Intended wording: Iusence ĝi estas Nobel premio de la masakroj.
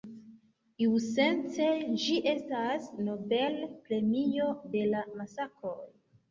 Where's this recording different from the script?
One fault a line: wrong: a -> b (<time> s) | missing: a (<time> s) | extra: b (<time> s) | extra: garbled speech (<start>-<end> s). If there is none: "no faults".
no faults